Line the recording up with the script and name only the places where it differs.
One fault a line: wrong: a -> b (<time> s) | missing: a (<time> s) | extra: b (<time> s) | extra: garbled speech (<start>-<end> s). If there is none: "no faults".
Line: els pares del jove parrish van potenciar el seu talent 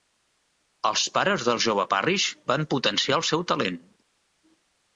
no faults